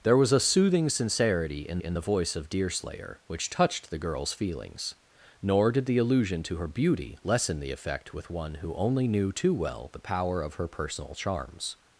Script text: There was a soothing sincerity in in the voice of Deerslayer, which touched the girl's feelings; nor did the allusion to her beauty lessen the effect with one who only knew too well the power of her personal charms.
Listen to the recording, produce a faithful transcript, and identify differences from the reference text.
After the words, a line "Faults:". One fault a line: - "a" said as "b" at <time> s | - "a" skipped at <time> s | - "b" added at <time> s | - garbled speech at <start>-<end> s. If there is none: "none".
There was a soothing sincerity in in the voice of Deerslayer, which touched the girl's feelings; nor did the allusion to her beauty lessen the effect with one who only knew too well the power of her personal charms.
Faults:
none